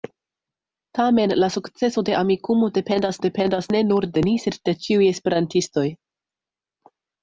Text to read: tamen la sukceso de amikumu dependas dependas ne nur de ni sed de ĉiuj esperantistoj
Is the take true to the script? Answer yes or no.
yes